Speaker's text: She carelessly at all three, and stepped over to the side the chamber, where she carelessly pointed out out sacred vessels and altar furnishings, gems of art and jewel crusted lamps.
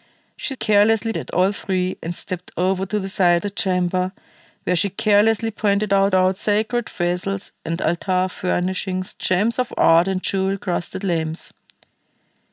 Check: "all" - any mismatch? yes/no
no